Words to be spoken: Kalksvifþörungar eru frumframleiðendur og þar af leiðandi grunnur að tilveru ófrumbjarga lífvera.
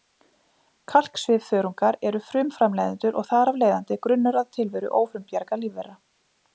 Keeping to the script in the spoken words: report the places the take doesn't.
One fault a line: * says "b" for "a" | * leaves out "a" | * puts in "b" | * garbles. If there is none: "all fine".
all fine